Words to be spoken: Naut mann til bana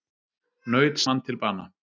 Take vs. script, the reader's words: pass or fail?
pass